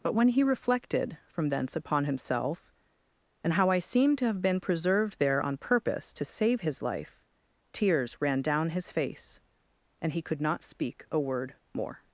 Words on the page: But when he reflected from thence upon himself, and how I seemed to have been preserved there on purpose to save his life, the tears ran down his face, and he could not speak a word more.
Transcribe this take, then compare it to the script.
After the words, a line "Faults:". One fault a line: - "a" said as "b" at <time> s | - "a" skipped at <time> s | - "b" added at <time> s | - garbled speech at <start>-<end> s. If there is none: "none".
But when he reflected from thence upon himself, and how I seemed to have been preserved there on purpose to save his life, tears ran down his face, and he could not speak a word more.
Faults:
- "the" skipped at 7.2 s